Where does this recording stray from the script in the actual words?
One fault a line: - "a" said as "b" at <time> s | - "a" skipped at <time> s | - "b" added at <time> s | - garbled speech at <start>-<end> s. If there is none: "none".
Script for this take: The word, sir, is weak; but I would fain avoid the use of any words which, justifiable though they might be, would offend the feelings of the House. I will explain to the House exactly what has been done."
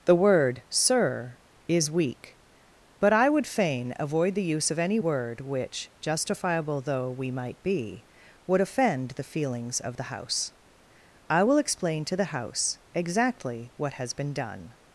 - "words" said as "word" at 5.0 s
- "they" said as "we" at 7.1 s